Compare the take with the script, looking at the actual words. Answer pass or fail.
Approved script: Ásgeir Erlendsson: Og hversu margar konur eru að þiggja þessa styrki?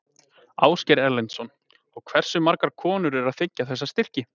pass